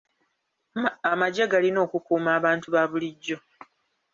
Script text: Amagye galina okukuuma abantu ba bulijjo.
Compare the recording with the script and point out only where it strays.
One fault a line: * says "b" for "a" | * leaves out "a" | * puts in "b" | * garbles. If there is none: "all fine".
all fine